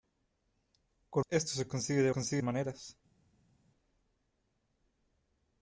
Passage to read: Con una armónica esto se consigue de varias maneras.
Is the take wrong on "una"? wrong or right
wrong